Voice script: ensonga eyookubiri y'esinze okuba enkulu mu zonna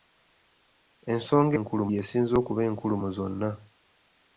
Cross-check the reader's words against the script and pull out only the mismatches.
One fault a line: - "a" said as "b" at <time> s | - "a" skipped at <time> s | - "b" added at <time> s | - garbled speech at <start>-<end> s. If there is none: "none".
- "eyookubiri" said as "enkulu" at 1.6 s